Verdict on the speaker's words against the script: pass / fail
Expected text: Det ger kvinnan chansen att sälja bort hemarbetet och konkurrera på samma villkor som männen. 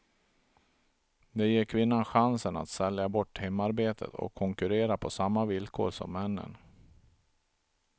pass